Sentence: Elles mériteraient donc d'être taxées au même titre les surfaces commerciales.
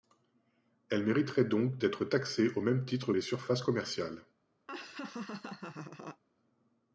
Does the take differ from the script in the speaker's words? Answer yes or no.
no